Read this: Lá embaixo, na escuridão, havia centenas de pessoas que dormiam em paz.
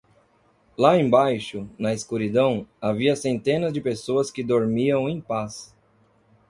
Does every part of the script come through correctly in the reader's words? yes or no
yes